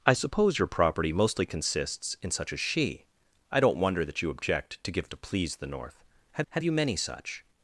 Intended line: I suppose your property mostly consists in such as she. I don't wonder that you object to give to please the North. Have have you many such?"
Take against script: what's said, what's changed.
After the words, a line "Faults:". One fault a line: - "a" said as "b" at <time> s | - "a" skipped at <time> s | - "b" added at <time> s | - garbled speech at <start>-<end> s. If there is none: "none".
I suppose your property mostly consists in such as she. I don't wonder that you object to give to please the North. Have have you many such?"
Faults:
none